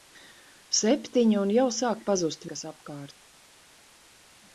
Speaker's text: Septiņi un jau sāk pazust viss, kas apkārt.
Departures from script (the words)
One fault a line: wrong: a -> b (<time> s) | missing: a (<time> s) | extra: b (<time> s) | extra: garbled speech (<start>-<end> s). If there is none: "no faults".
missing: viss (2.5 s)